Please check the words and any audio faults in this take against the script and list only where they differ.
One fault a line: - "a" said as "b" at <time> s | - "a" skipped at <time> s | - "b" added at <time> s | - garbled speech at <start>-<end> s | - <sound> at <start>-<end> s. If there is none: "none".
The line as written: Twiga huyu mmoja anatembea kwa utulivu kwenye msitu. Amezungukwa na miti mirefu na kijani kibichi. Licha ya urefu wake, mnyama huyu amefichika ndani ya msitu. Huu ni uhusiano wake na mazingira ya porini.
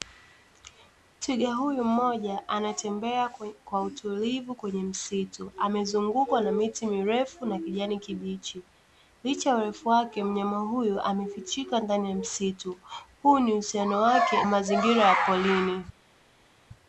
- "na" skipped at 14.4 s